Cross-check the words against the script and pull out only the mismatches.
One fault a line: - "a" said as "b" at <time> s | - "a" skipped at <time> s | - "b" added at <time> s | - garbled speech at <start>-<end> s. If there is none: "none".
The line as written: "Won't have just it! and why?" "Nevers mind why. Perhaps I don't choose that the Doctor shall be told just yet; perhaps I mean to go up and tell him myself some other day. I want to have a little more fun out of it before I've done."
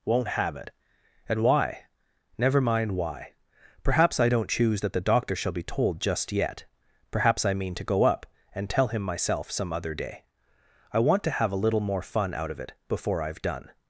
- "just" skipped at 0.6 s
- "Nevers" said as "Never" at 2.4 s